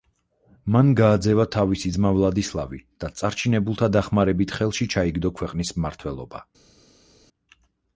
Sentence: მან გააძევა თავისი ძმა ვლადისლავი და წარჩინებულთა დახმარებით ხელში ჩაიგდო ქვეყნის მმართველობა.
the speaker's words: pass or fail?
pass